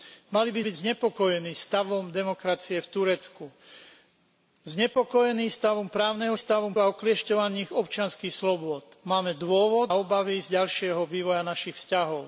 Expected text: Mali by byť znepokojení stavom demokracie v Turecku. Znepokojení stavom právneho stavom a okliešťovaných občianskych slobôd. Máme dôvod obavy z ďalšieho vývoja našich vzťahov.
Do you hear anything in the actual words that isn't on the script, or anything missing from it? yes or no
no